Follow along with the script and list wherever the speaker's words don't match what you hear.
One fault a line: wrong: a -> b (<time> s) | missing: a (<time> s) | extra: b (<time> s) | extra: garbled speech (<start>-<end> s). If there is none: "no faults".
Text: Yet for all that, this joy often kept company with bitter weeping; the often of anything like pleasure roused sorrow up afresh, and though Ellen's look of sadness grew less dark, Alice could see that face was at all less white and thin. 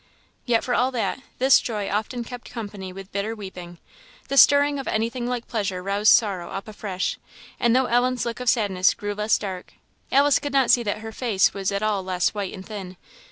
wrong: often -> stirring (4.4 s)
extra: not (10.5 s)
extra: her (11.0 s)